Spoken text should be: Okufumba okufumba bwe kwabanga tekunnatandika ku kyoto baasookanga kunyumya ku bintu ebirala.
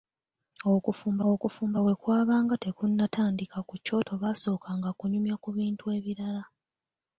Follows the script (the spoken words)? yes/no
yes